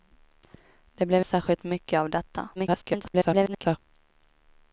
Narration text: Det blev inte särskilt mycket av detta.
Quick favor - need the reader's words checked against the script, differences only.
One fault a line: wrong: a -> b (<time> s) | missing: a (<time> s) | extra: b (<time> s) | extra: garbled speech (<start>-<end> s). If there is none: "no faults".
missing: inte (1.2 s)
extra: garbled speech (2.6-3.8 s)